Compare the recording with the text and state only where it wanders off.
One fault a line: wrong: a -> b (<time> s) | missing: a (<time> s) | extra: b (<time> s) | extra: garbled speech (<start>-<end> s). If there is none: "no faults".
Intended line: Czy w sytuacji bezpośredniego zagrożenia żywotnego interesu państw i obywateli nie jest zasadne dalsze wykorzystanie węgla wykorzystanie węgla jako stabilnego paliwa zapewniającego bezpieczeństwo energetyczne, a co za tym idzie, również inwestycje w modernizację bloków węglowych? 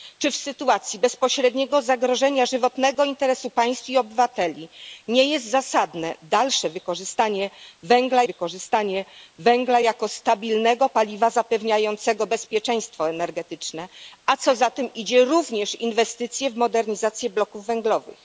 no faults